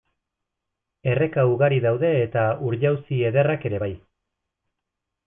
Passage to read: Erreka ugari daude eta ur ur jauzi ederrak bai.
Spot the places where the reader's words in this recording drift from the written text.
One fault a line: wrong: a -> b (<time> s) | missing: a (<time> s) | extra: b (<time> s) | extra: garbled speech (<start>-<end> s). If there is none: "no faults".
missing: ur (2.8 s)
extra: ere (3.7 s)